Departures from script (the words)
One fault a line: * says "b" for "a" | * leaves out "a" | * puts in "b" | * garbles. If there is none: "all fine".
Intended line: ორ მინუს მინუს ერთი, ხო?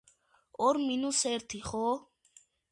* leaves out "მინუს"